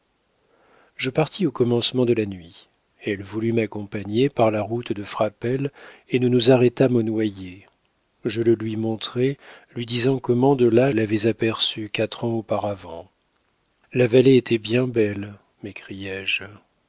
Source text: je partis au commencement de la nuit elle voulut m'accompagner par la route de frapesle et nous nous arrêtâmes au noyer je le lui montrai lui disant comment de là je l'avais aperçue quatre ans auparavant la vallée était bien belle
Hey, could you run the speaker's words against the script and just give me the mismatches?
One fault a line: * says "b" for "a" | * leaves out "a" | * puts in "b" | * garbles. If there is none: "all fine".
* leaves out "je"